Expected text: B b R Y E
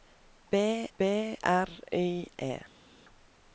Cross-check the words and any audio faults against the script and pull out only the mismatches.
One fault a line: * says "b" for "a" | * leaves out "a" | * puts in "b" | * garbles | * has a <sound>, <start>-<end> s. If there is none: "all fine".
all fine